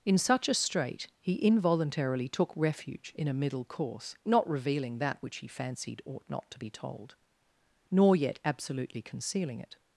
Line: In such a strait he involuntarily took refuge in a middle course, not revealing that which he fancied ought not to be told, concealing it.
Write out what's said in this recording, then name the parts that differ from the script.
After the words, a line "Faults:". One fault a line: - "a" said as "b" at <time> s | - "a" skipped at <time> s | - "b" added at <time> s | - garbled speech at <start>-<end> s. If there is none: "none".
In such a strait he involuntarily took refuge in a middle course, not revealing that which he fancied ought not to be told, nor yet absolutely concealing it.
Faults:
- "nor yet absolutely" added at 7.9 s